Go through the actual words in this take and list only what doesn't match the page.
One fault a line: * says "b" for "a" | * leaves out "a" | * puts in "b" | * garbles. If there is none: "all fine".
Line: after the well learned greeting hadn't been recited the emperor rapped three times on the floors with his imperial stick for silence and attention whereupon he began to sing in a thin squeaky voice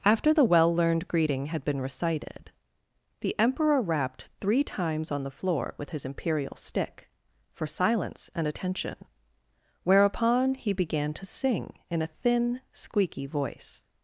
* says "had" for "hadn't"
* says "floor" for "floors"